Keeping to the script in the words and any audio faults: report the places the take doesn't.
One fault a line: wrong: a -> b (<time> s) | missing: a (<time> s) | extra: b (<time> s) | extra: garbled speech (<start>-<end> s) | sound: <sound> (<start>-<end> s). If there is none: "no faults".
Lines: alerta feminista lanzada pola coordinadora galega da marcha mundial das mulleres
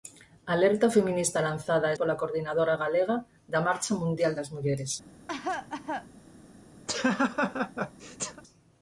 sound: cough (5.3-6.1 s)
sound: laugh (6.9-8.4 s)